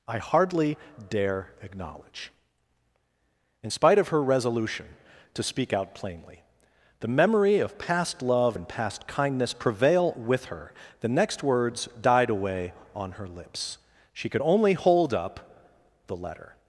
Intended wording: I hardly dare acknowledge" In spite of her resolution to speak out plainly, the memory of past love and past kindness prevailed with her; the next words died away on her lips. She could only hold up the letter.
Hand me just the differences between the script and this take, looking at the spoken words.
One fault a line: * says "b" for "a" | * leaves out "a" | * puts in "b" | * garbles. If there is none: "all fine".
* says "prevail" for "prevailed"